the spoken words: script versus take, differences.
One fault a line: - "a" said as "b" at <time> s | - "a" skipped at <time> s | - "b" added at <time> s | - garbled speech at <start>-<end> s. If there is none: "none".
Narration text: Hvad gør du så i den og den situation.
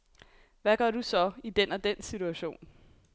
none